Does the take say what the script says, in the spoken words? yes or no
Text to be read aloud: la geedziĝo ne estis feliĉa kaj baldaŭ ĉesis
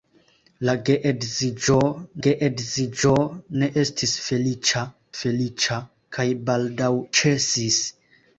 no